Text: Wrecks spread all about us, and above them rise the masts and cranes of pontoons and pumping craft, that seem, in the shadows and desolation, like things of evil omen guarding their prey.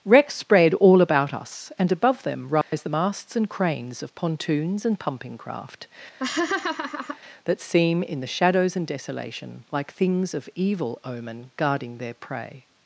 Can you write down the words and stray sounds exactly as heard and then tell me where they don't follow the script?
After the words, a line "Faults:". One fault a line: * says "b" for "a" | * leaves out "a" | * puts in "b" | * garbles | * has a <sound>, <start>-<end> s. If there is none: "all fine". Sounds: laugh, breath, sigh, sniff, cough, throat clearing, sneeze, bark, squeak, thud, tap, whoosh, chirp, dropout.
Wrecks spread all about us, and above them rise the masts and cranes of pontoons and pumping craft, that seem, in the shadows and desolation, like things of evil omen guarding their prey.
Faults:
* has a dropout, 2.6-2.7 s
* has a laugh, 6.2-7.2 s